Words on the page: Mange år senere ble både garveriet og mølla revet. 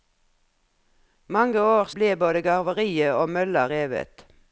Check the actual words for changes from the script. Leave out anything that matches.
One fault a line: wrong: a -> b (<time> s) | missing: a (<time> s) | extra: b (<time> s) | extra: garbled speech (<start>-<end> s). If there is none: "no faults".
missing: senere (1.9 s)